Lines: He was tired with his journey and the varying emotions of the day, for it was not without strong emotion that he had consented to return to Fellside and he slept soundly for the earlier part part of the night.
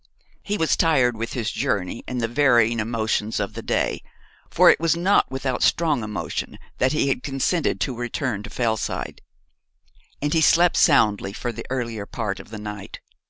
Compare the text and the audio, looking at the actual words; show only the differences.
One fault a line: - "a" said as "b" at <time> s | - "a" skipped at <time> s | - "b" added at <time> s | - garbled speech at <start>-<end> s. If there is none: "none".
- "part" skipped at 12.4 s